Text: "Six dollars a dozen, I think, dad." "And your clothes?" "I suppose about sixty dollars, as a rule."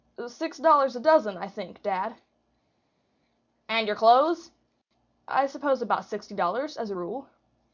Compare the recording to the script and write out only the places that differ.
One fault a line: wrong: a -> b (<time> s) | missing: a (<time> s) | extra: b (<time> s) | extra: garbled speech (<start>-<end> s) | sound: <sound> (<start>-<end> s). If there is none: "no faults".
no faults